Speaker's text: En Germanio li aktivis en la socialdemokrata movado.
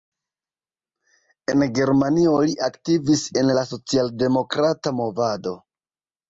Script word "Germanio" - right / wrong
right